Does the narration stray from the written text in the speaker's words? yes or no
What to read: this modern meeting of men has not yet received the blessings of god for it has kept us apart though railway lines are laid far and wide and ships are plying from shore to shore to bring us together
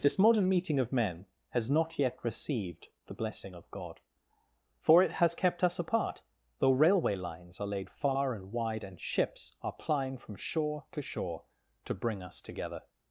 yes